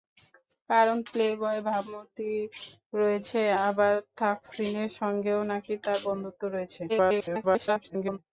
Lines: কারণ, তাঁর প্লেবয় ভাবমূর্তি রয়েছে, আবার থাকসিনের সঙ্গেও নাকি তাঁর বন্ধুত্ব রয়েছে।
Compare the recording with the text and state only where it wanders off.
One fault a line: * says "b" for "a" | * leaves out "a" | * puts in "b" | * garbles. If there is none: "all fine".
* leaves out "তাঁর"
* garbles